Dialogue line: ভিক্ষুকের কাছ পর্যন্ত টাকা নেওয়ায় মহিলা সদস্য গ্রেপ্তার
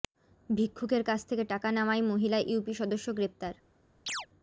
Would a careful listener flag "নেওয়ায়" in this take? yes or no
no